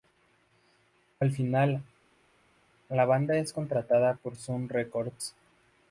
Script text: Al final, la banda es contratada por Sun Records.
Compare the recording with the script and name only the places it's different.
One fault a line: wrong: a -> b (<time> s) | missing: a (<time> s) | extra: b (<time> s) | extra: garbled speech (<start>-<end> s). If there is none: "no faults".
no faults